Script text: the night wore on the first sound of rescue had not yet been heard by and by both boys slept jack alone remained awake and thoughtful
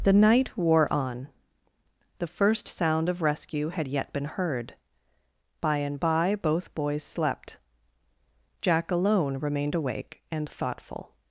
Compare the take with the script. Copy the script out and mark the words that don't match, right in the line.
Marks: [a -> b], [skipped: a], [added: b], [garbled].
the night wore on the first sound of rescue had [skipped: not] yet been heard by and by both boys slept jack alone remained awake and thoughtful